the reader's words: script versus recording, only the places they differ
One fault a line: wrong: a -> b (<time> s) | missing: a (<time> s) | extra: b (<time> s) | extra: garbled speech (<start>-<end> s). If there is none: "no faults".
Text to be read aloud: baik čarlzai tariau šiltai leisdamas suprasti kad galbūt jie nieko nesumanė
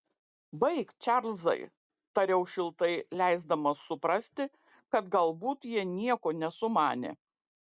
no faults